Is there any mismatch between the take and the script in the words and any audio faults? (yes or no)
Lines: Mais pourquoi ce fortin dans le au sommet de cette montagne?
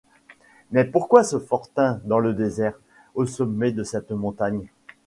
yes